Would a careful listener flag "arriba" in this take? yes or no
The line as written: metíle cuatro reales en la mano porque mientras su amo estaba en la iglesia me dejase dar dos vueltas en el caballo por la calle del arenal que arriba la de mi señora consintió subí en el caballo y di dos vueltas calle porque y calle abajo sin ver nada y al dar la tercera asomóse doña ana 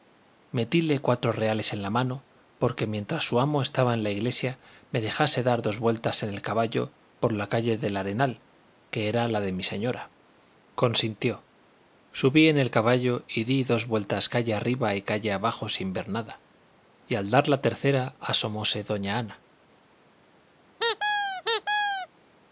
yes